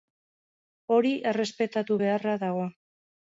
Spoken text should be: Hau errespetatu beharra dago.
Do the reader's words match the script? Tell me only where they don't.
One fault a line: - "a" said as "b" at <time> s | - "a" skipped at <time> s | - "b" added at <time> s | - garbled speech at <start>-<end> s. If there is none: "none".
- "Hau" said as "Hori" at 0.9 s